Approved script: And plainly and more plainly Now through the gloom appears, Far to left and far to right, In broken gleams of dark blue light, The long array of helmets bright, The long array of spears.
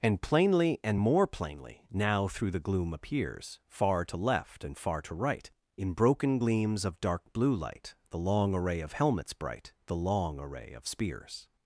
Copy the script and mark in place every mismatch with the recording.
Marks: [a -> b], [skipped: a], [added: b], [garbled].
And plainly and more plainly Now through the gloom appears, Far to left and far to right, In broken gleams of dark blue light, The long array of helmets bright, The long array of spears.